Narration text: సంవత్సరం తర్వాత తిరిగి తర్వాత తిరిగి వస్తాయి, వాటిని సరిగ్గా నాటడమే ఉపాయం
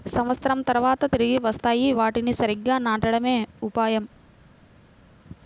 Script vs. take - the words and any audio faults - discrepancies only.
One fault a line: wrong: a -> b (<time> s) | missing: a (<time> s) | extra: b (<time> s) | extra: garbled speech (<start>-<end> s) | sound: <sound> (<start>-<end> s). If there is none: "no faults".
missing: తర్వాత తిరిగి (1.4 s)